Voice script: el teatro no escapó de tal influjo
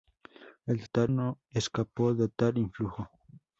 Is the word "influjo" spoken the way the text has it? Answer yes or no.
yes